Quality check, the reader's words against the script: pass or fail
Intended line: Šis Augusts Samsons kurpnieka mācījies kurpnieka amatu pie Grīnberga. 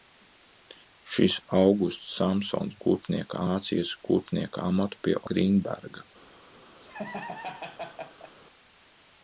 pass